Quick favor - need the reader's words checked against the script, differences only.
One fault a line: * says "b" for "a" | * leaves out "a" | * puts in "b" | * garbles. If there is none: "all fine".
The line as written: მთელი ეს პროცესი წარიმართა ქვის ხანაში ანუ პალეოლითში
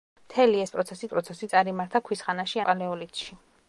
* puts in "პროცესი"
* leaves out "ანუ"